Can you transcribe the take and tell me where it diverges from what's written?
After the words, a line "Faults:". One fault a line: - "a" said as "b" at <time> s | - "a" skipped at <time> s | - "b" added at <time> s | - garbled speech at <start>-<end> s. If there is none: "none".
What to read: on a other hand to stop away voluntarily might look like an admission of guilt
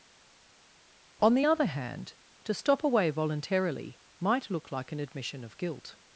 on the other hand to stop away voluntarily might look like an admission of guilt
Faults:
- "a" said as "the" at 1.3 s